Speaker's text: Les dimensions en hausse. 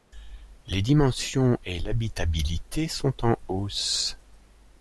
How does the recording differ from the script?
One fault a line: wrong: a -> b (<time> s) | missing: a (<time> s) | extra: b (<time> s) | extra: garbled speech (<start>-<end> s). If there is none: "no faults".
extra: et l'habitabilité sont (1.7 s)